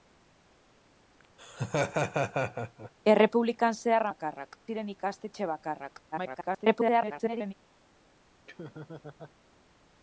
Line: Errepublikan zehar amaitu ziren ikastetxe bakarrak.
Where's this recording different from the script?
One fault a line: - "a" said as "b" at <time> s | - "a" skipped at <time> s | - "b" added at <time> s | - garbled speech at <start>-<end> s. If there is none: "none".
- "amaitu" said as "bakarrak" at 4.1 s
- garbled speech at 6.1-7.5 s